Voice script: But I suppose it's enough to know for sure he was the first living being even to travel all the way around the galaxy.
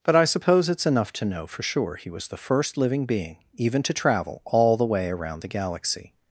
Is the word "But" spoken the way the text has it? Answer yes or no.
yes